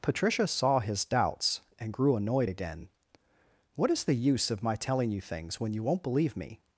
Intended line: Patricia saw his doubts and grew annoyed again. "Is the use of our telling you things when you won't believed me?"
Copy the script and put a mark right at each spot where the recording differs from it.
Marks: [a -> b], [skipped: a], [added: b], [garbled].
Patricia saw his doubts and grew annoyed again. [added: What] "Is the use of [our -> my] telling you things when you won't [believed -> believe] me?"